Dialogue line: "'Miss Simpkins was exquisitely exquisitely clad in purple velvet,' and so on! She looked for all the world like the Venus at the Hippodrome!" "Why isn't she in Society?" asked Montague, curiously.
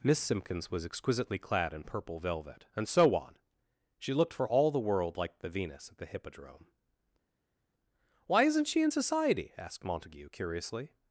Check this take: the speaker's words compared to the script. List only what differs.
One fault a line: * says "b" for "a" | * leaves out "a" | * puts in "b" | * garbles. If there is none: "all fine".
* leaves out "exquisitely"